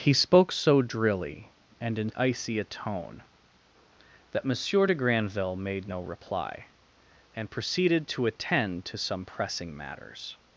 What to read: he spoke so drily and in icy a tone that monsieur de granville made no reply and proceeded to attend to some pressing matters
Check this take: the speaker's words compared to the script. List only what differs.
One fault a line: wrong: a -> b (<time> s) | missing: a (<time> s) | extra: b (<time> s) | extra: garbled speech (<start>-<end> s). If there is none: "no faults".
no faults